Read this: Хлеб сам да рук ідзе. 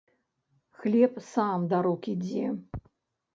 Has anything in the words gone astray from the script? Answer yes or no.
no